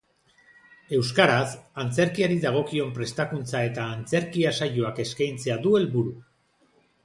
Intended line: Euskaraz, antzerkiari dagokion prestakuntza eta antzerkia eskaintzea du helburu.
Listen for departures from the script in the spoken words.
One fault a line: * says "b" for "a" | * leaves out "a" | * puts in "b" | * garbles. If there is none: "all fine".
* puts in "saioak"